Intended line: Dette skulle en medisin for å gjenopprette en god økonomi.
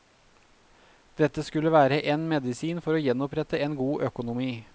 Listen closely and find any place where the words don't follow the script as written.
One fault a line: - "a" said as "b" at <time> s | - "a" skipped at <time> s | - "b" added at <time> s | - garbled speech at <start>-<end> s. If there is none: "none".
- "være" added at 1.7 s